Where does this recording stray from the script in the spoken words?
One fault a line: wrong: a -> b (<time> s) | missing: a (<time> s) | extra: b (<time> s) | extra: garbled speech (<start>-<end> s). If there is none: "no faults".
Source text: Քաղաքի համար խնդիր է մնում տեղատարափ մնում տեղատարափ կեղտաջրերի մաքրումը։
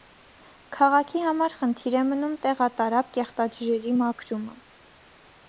missing: մնում տեղատարափ (3.1 s)